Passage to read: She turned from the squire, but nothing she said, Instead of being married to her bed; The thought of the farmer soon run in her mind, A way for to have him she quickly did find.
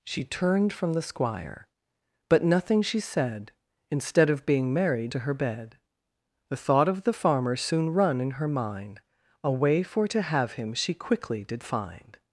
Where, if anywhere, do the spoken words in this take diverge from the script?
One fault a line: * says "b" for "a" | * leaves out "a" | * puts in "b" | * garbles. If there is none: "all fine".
all fine